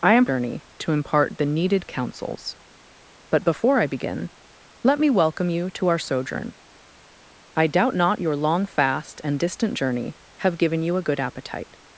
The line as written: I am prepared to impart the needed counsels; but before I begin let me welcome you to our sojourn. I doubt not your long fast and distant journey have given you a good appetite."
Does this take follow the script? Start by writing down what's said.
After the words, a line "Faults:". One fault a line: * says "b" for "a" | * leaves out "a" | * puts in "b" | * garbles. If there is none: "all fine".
I am journey to impart the needed counsels; but before I begin let me welcome you to our sojourn. I doubt not your long fast and distant journey have given you a good appetite."
Faults:
* says "journey" for "prepared"